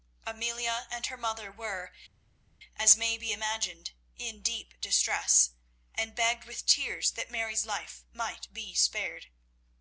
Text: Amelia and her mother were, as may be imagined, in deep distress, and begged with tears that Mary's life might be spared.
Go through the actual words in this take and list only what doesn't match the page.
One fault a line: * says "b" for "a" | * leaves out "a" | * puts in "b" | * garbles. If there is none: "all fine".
all fine